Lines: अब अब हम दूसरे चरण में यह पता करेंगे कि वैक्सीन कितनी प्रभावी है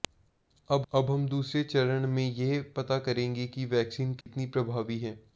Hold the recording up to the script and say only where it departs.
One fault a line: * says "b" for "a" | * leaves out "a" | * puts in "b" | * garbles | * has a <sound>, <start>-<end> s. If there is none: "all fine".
* has a dropout, 4.2-4.3 s